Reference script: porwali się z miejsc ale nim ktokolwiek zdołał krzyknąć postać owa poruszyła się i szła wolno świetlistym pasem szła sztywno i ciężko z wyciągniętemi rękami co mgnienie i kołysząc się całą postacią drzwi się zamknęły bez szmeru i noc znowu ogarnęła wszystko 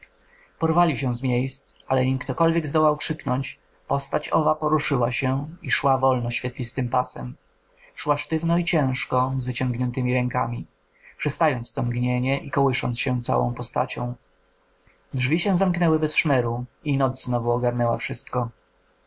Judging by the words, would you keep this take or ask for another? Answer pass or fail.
fail